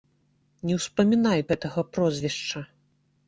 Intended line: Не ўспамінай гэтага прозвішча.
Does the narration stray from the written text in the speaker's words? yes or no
no